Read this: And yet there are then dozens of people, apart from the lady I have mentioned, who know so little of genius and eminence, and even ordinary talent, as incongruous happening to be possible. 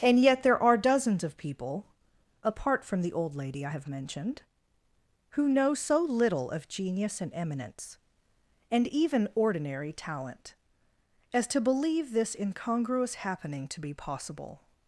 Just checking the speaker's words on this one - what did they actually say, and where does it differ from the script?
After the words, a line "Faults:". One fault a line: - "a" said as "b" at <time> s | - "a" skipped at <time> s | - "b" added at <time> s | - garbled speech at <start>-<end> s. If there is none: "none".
And yet there are dozens of people, apart from the old lady I have mentioned, who know so little of genius and eminence, and even ordinary talent, as to believe this incongruous happening to be possible.
Faults:
- "then" skipped at 0.8 s
- "old" added at 3.1 s
- "to believe this" added at 11.5 s